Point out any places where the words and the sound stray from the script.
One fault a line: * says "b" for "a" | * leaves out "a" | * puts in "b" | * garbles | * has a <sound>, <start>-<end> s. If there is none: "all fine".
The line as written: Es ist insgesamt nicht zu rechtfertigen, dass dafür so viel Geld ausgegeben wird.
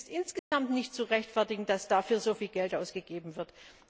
* has a dropout, 0.4-0.5 s